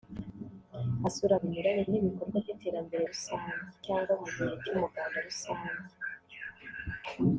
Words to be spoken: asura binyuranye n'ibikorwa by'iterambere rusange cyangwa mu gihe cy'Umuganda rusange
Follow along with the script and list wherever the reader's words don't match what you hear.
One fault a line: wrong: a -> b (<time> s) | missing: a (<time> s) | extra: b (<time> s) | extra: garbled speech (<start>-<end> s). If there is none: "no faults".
no faults